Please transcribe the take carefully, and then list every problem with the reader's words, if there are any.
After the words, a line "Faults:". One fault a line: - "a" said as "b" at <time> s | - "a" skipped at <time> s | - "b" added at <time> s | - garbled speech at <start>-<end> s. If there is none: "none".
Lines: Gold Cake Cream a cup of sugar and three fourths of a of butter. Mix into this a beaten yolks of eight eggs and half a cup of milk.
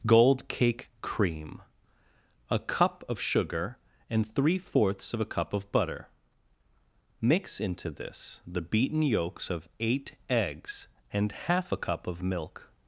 Gold Cake Cream a cup of sugar and three fourths of a cup of butter. Mix into this the beaten yolks of eight eggs and half a cup of milk.
Faults:
- "cup" added at 5.2 s
- "a" said as "the" at 8.5 s